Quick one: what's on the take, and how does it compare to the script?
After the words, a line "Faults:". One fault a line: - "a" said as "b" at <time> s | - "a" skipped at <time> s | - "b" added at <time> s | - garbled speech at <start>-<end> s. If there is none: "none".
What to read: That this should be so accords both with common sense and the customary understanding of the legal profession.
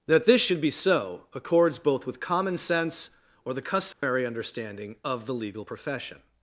That this should be so accords both with common sense or the customary understanding of the legal profession.
Faults:
- "and" said as "or" at 3.5 s